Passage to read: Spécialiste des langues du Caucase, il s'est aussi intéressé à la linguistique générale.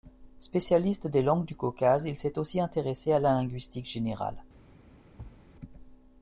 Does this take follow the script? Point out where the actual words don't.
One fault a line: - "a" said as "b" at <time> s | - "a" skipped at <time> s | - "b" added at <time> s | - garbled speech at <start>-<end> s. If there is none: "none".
none